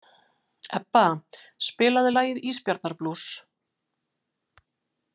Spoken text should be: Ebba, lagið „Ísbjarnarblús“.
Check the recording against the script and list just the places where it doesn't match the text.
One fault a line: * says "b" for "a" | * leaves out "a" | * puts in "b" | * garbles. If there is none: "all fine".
* puts in "spilaðu"